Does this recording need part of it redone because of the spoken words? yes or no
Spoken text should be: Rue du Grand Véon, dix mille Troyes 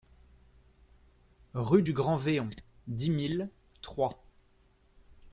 no